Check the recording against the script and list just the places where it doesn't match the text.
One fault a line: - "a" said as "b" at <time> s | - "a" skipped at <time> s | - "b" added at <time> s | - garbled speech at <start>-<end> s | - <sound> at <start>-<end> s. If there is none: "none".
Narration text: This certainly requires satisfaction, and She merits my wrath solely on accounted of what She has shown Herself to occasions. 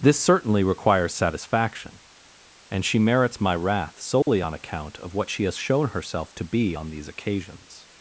- dropout at 4.2-4.3 s
- "accounted" said as "account" at 4.5 s
- "be on these" added at 6.5 s